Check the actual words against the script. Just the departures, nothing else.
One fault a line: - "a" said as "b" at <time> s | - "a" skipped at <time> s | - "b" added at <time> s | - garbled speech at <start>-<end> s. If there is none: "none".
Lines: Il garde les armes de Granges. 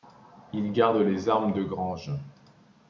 none